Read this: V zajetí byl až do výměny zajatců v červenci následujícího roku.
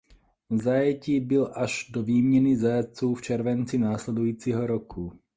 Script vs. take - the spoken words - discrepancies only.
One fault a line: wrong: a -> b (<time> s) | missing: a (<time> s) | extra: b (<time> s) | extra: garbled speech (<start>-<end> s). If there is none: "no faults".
no faults